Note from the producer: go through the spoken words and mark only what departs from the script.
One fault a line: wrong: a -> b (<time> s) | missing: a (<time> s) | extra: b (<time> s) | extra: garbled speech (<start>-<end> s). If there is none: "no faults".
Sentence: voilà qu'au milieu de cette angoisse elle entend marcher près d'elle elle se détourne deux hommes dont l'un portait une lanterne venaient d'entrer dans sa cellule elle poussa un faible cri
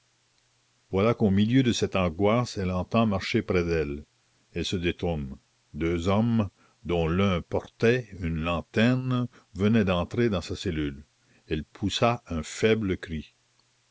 no faults